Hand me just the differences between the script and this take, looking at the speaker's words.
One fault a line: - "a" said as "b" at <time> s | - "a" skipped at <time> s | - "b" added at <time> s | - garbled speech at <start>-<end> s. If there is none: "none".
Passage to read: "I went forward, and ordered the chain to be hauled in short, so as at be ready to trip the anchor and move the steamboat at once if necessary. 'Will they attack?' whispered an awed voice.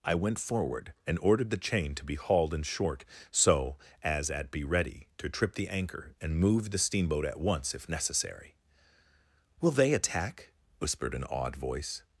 none